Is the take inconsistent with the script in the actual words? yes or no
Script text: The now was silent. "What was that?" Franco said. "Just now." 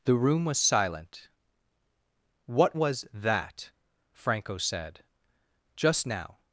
yes